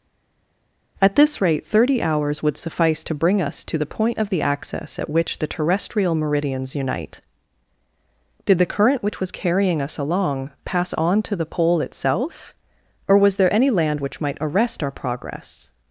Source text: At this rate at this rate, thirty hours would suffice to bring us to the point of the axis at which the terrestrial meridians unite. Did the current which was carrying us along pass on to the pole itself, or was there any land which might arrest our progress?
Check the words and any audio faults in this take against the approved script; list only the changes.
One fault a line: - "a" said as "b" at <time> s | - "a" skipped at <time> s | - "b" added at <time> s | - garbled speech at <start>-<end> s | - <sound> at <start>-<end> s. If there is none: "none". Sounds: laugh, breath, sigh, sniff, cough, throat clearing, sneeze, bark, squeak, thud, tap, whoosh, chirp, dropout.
- "at this rate" skipped at 1.7 s